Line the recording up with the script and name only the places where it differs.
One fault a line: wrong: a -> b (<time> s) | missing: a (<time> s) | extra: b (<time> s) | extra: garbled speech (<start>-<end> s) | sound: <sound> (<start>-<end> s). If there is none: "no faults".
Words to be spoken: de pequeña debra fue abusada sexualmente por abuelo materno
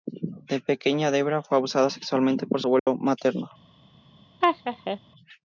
sound: dropout (2.8-2.9 s)
sound: laugh (4.4-5.0 s)